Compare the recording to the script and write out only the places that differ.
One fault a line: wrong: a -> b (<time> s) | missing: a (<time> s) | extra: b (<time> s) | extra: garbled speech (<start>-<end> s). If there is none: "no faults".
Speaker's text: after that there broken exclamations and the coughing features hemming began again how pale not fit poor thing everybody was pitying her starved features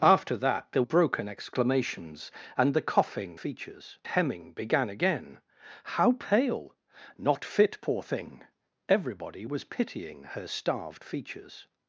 no faults